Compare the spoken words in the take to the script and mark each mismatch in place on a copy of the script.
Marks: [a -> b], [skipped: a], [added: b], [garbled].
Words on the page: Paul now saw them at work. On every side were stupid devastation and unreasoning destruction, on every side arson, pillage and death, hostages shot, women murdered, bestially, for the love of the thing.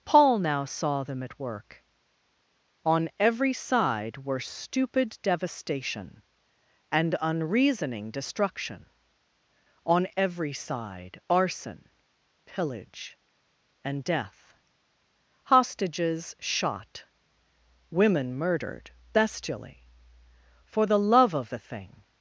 Paul now saw them at work. On every side were stupid devastation and unreasoning destruction, on every side arson, pillage and death, hostages shot, women murdered, bestially, for the love of the thing.